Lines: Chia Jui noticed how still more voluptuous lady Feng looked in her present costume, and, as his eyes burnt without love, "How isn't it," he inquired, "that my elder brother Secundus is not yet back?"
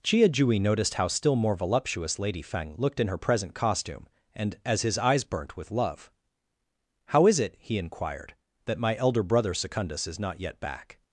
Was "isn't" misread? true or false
true